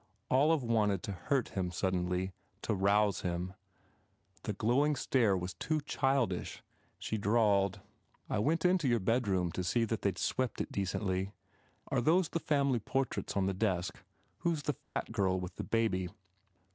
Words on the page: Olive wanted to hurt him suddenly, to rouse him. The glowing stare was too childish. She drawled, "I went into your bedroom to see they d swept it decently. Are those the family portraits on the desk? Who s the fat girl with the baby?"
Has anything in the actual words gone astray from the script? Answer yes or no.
yes